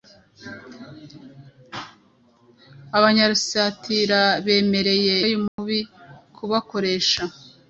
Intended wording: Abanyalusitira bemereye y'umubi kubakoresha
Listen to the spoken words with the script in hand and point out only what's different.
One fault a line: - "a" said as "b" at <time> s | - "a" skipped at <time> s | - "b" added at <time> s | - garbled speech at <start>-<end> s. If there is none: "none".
none